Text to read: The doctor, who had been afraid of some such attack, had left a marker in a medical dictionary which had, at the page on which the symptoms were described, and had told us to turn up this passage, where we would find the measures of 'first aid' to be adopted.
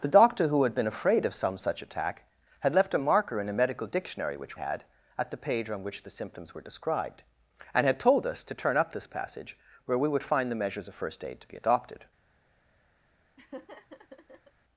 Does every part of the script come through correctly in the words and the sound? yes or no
no